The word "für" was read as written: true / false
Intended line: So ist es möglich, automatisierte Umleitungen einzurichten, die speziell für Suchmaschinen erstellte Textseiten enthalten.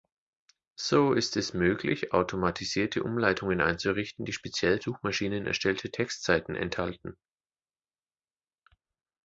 false